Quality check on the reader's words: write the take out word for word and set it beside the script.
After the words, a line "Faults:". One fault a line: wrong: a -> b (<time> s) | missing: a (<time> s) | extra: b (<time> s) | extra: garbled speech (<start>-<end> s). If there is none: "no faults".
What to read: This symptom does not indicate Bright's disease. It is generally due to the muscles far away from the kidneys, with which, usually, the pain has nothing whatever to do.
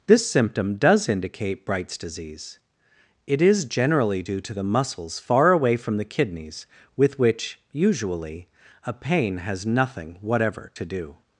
This symptom does indicate Bright's disease. It is generally due to the muscles far away from the kidneys, with which, usually, a pain has nothing whatever to do.
Faults:
missing: not (1.1 s)
wrong: the -> a (8.9 s)